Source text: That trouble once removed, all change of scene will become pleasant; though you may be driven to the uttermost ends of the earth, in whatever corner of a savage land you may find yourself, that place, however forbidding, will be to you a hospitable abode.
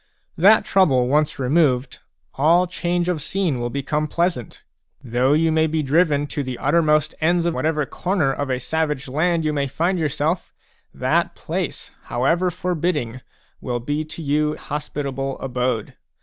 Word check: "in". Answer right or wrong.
wrong